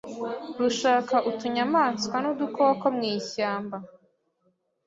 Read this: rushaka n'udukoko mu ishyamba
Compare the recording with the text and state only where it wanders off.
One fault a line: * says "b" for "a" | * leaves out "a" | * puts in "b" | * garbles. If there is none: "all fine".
* puts in "utunyamaswa"